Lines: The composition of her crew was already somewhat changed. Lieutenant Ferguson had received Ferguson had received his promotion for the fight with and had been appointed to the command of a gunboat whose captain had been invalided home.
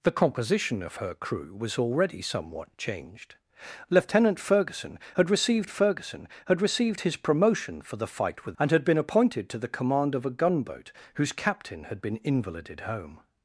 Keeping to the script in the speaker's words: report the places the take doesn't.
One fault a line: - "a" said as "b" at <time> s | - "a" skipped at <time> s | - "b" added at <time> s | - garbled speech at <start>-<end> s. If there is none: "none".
none